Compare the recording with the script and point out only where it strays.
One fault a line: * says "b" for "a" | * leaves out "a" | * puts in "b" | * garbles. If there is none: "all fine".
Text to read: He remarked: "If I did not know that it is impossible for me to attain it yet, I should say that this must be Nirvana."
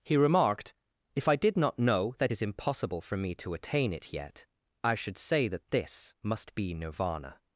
* leaves out "it"